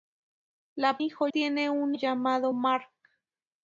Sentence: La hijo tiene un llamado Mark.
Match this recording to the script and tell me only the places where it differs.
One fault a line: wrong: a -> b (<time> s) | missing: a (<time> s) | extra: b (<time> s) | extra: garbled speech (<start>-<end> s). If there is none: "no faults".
no faults